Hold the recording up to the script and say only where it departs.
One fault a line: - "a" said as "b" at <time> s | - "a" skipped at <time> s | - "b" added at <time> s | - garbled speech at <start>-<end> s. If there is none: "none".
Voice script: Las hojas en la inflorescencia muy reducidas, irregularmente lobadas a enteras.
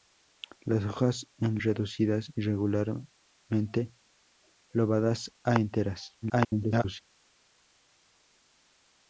- "la inflorescencia muy" skipped at 1.6 s
- garbled speech at 6.2-7.0 s